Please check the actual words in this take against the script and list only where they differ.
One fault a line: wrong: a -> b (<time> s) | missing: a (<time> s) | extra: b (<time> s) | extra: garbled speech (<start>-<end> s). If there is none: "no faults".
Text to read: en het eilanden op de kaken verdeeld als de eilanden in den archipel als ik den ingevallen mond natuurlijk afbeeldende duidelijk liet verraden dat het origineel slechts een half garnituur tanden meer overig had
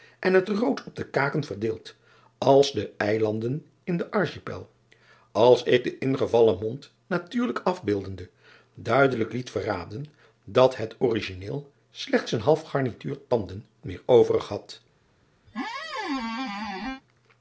wrong: eilanden -> rood (0.5 s)